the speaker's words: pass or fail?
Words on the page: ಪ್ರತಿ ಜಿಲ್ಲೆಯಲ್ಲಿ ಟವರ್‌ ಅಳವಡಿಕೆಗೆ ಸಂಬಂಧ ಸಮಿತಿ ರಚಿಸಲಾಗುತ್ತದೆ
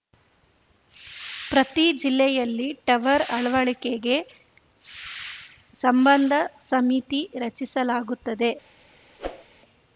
pass